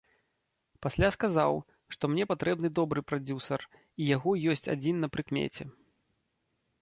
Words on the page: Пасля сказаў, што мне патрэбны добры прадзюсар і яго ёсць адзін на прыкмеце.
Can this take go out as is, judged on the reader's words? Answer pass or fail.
pass